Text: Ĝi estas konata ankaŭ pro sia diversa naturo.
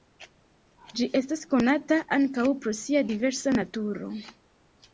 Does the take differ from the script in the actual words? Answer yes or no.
no